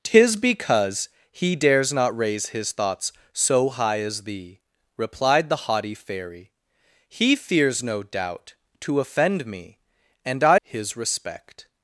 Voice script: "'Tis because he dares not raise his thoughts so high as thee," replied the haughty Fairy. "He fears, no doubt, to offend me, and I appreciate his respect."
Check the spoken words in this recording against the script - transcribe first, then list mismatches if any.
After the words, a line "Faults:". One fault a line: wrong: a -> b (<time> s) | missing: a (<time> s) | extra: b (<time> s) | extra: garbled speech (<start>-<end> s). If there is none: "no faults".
"'Tis because he dares not raise his thoughts so high as thee," replied the haughty Fairy. "He fears, no doubt, to offend me, and I his respect."
Faults:
missing: appreciate (10.6 s)